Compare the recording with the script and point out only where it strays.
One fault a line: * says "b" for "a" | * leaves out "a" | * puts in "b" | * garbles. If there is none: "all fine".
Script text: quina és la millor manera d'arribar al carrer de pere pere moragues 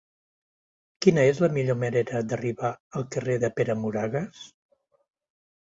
* leaves out "pere"